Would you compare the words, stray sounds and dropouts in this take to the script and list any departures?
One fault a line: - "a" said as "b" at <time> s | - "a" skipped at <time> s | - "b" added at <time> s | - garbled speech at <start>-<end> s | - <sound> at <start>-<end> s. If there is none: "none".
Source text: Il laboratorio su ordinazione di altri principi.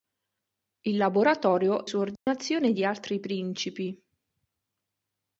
- dropout at 2.2-2.3 s